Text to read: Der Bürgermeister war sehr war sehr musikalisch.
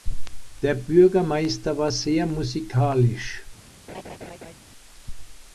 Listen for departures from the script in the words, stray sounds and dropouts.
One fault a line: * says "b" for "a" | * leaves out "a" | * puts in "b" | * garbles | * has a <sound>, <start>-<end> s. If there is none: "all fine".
* leaves out "war sehr"
* has a laugh, 3.9-4.5 s